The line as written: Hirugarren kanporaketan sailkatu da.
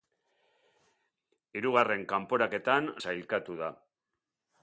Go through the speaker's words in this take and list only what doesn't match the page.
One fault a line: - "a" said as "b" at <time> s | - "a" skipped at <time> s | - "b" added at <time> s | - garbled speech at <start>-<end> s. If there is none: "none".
none